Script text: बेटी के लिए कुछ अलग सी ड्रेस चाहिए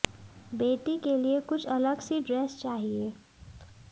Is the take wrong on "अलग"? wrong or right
right